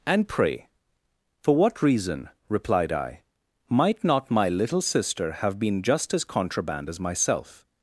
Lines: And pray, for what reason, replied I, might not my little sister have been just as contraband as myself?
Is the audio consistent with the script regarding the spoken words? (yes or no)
yes